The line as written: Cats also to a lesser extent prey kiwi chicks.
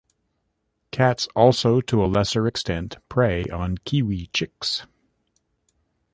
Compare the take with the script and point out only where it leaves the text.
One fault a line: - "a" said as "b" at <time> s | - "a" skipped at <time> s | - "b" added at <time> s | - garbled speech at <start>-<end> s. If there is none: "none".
- "on" added at 3.5 s